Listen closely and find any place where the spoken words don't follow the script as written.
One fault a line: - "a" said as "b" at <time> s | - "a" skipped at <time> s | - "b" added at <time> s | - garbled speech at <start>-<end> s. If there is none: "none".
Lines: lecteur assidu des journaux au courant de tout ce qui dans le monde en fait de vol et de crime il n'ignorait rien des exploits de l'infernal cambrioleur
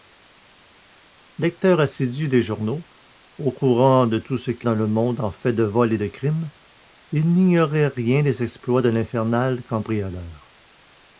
none